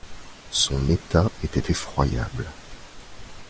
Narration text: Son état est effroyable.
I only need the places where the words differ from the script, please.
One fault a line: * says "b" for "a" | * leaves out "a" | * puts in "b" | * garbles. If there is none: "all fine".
* says "était" for "est"